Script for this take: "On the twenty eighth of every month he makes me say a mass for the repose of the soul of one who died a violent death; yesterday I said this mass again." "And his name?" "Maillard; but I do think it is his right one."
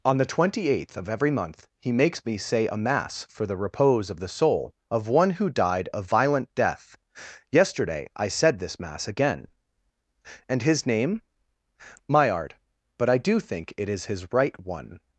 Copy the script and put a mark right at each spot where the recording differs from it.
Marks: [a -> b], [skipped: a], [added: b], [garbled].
"On the twenty eighth of every month he makes me say a mass for the repose of the soul of one who died a violent death; yesterday I said this mass again." "And his name?" "Maillard; but I do think it is his right one."